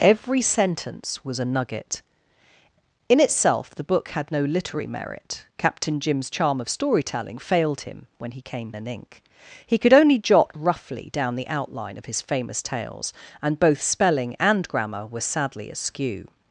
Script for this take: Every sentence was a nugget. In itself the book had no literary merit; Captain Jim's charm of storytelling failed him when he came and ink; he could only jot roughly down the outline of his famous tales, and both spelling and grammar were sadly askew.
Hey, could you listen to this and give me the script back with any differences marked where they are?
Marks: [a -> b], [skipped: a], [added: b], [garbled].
Every sentence was a nugget. In itself the book had no literary merit; Captain Jim's charm of storytelling failed him when he came and ink; he could only jot roughly down the outline of his famous tales, and both spelling and grammar were sadly askew.